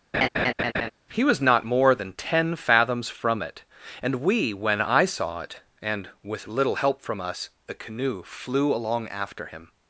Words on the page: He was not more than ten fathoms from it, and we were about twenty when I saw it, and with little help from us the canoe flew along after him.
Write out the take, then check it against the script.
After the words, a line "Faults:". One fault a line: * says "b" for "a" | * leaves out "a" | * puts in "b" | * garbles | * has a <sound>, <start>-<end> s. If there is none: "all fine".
He was not more than ten fathoms from it, and we when I saw it, and with little help from us the canoe flew along after him.
Faults:
* has a laugh, 0.1-0.9 s
* leaves out "were about twenty"